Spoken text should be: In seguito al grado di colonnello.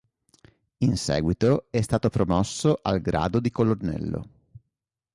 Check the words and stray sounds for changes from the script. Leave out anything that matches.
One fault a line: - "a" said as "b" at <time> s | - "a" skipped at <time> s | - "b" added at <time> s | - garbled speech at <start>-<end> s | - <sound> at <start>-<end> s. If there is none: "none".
- "è stato promosso" added at 1.7 s